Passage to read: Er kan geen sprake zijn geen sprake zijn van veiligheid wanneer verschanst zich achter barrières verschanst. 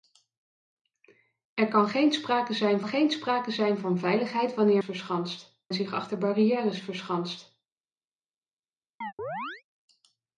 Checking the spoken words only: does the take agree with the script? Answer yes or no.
yes